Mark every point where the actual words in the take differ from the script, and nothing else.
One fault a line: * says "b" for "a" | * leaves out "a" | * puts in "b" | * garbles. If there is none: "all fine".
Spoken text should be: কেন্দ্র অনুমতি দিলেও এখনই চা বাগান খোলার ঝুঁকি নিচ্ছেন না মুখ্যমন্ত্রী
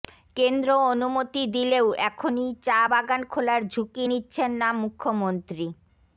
all fine